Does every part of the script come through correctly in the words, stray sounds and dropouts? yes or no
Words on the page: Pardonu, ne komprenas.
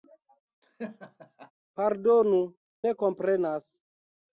no